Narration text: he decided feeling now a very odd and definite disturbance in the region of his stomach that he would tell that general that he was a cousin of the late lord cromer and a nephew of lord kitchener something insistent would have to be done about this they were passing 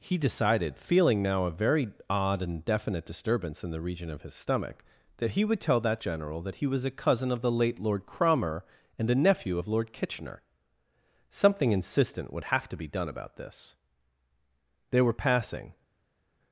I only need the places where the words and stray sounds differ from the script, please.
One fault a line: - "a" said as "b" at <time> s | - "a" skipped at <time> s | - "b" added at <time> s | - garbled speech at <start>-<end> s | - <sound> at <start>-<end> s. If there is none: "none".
none